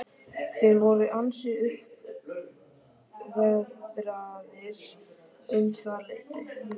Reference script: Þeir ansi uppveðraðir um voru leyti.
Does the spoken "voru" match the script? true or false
false